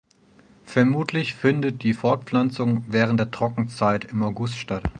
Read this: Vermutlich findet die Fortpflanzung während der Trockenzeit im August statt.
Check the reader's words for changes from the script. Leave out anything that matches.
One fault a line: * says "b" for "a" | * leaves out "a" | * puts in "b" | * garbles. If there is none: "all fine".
all fine